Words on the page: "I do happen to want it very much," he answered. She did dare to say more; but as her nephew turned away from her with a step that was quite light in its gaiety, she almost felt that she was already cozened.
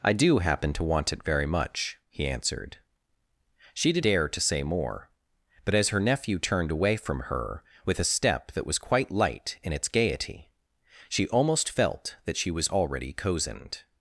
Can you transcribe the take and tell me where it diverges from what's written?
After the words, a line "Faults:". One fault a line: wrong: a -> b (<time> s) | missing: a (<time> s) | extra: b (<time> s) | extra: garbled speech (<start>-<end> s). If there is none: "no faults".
"I do happen to want it very much," he answered. She did dare to say more; but as her nephew turned away from her with a step that was quite light in its gaiety, she almost felt that she was already cozened.
Faults:
no faults